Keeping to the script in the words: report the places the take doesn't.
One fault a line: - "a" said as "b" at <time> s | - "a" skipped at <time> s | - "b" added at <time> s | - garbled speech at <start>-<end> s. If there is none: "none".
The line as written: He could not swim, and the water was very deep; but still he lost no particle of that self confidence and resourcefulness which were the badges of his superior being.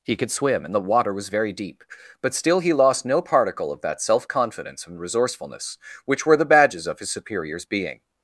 - "not" skipped at 0.3 s
- "superior" said as "superiors" at 7.1 s